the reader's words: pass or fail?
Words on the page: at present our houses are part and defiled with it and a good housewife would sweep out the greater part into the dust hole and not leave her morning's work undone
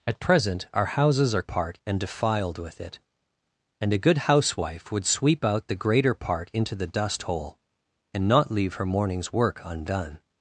pass